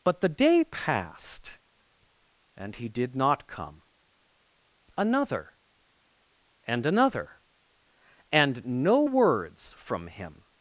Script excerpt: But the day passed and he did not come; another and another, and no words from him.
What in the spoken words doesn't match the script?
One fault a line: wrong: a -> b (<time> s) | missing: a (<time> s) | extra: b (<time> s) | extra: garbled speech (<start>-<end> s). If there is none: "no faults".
no faults